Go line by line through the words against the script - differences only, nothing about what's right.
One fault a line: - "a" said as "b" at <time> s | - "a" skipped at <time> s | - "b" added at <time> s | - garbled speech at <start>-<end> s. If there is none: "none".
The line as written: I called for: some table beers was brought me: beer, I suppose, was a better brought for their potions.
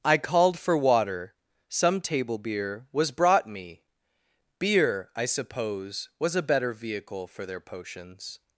- "water" added at 0.8 s
- "beers" said as "beer" at 2.4 s
- "brought" said as "vehicle" at 6.7 s